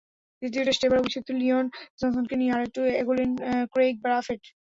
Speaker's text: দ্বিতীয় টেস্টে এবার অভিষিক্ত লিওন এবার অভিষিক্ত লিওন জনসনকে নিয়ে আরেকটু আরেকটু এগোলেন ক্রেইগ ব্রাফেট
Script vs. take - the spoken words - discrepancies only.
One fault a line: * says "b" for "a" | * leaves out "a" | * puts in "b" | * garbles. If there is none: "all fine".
* leaves out "এবার অভিষিক্ত লিওন"
* leaves out "আরেকটু"